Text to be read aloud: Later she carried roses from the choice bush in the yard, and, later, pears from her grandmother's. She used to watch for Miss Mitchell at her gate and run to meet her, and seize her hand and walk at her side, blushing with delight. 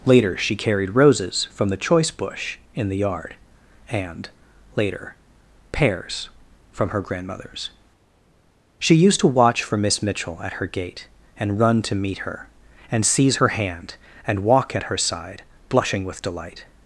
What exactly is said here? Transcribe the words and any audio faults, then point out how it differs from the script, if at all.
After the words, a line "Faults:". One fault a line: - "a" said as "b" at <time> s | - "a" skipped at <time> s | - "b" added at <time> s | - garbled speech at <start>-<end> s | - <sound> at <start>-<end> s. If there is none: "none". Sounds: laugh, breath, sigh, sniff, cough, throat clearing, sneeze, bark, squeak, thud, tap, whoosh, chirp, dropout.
Later she carried roses from the choice bush in the yard, and, later, pears from her grandmother's. She used to watch for Miss Mitchell at her gate and run to meet her, and seize her hand and walk at her side, blushing with delight.
Faults:
none